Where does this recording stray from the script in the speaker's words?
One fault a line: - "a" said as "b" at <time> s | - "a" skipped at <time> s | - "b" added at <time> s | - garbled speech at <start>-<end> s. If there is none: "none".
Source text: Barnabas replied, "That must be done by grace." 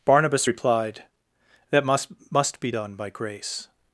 - "must" added at 2.3 s